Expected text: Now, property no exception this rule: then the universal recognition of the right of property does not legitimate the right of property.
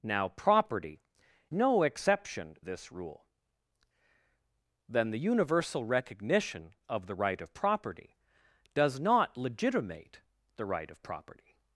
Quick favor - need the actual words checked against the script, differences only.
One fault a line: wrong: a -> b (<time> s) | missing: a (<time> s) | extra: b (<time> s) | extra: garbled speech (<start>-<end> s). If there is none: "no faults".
no faults